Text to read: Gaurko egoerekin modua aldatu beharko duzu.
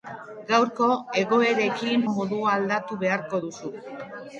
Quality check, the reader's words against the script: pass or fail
pass